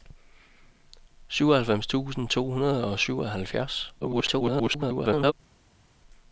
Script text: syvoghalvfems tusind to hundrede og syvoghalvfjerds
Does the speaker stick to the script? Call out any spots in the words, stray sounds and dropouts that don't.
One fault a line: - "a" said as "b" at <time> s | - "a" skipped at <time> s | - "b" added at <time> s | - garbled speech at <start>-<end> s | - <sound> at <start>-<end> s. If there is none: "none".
- garbled speech at 4.0-5.3 s